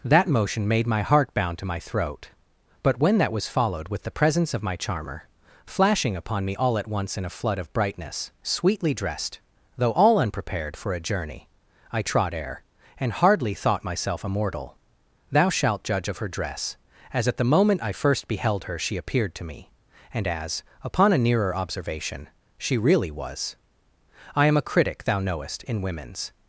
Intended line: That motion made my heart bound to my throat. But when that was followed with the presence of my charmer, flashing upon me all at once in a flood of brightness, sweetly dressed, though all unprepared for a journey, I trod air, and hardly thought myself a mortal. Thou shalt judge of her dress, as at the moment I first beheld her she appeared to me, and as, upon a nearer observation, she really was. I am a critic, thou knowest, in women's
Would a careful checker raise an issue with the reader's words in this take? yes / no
no